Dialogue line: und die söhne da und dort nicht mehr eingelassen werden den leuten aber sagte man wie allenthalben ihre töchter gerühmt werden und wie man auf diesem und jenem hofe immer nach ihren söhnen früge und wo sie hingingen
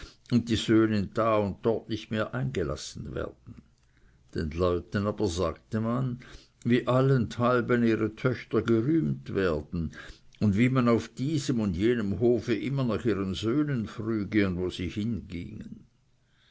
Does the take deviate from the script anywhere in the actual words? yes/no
no